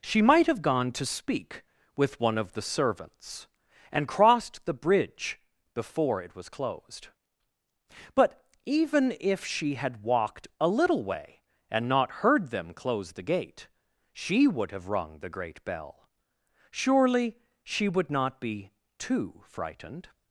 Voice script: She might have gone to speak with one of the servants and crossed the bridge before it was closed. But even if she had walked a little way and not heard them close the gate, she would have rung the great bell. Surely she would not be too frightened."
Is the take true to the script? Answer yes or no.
yes